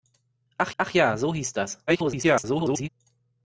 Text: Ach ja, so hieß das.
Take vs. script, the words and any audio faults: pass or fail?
fail